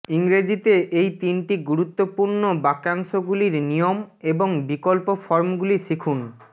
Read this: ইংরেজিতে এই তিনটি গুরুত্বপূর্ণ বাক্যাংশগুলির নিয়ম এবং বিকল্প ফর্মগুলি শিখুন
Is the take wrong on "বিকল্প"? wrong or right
right